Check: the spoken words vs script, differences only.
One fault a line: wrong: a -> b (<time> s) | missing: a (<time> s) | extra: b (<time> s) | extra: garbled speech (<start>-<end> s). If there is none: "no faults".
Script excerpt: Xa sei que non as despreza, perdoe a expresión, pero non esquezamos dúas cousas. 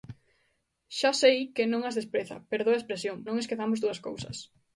missing: pero (3.2 s)